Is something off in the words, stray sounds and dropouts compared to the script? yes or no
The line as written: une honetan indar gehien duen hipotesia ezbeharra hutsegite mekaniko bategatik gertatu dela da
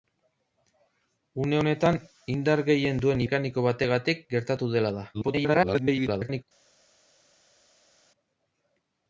yes